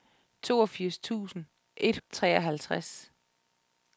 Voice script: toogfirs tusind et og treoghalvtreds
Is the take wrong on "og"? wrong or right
right